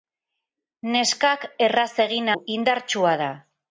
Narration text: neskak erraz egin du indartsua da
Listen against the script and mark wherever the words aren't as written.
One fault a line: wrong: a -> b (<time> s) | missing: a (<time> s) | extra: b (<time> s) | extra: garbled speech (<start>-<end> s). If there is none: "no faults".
no faults